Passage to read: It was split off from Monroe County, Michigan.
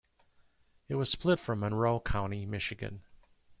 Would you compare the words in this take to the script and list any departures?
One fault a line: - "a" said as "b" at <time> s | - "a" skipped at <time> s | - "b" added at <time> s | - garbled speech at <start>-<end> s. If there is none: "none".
- "off" skipped at 1.4 s